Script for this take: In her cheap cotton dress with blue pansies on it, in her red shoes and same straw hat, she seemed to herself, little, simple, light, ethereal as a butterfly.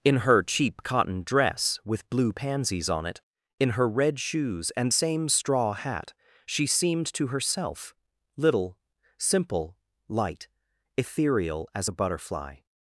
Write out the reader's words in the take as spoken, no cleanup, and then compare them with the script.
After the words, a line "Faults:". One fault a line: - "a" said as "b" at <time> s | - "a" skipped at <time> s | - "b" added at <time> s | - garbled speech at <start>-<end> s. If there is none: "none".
In her cheap cotton dress with blue pansies on it, in her red shoes and same straw hat, she seemed to herself, little, simple, light, ethereal as a butterfly.
Faults:
none